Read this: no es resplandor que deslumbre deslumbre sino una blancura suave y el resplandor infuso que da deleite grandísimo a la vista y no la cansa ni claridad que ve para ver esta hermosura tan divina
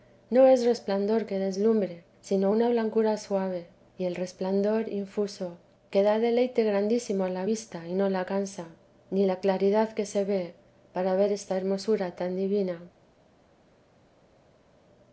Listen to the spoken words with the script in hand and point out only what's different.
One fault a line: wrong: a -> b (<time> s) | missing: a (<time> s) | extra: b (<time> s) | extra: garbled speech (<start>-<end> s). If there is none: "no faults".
missing: deslumbre (2.0 s)
extra: la (9.3 s)
extra: se (10.0 s)